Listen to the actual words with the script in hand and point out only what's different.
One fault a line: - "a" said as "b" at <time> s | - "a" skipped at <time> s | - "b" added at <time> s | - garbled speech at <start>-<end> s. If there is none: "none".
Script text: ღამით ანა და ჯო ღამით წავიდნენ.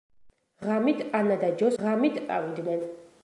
none